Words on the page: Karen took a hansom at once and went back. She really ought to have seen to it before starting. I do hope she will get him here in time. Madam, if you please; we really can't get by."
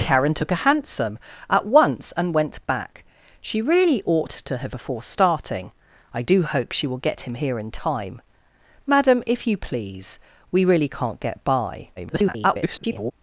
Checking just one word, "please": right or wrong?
right